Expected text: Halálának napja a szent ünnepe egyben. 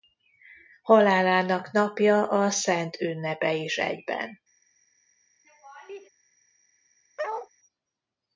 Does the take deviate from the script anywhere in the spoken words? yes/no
yes